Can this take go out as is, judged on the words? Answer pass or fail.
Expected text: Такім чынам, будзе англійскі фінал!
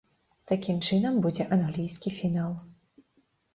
pass